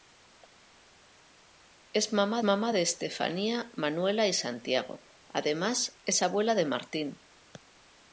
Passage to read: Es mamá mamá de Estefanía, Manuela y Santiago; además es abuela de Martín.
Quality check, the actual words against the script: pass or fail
pass